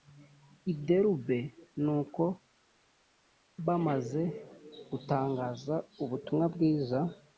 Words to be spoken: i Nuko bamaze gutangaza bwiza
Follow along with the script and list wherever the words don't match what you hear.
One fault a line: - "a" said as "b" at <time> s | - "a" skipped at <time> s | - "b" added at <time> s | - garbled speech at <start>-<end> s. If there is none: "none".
- "Derube" added at 0.8 s
- "ubutumwa" added at 6.0 s